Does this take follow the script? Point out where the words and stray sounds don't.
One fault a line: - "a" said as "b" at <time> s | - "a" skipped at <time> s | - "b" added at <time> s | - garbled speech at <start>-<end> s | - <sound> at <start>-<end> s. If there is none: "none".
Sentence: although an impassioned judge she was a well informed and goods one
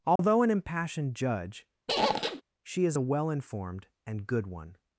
- dropout at 0.2-0.2 s
- squeak at 1.9-2.4 s
- "was" said as "is" at 2.8 s
- "goods" said as "good" at 4.2 s